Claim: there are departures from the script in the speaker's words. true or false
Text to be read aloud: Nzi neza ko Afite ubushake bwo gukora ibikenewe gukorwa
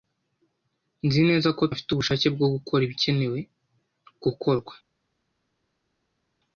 false